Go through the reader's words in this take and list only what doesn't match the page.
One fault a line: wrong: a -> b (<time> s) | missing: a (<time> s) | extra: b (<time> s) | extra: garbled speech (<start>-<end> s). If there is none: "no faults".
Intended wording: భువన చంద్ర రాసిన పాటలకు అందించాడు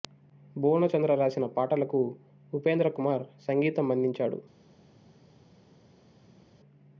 extra: ఉపేంద్ర కుమార్ సంగీతం (2.5 s)